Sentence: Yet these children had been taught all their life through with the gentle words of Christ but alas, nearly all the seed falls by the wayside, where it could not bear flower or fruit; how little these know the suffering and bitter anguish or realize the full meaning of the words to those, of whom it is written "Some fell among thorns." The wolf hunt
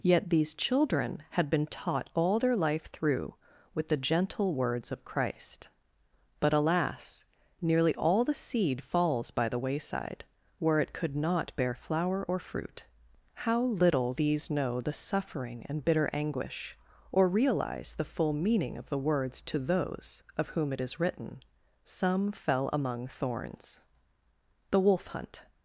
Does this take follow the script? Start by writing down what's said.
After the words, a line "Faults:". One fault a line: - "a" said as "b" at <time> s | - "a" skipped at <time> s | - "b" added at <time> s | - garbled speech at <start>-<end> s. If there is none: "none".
Yet these children had been taught all their life through with the gentle words of Christ but alas, nearly all the seed falls by the wayside, where it could not bear flower or fruit; how little these know the suffering and bitter anguish or realize the full meaning of the words to those, of whom it is written "Some fell among thorns." The wolf hunt
Faults:
none